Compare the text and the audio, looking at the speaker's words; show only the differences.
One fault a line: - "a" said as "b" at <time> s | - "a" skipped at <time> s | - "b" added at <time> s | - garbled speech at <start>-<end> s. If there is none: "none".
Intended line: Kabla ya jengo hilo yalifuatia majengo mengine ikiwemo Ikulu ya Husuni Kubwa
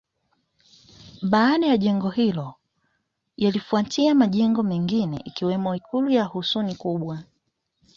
- "Kabla" said as "Baada" at 1.2 s